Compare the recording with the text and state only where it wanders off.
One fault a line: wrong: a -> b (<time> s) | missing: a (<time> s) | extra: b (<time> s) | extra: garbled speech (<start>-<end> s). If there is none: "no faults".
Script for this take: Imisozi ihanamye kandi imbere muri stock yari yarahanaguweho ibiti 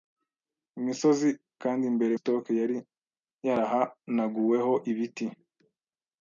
missing: ihanamye (1.3 s)
missing: muri (2.1 s)